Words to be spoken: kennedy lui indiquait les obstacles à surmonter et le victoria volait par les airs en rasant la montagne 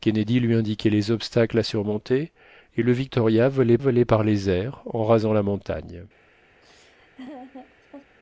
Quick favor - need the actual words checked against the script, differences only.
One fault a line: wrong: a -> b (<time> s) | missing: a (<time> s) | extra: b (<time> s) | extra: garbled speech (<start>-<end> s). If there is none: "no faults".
extra: volait (3.8 s)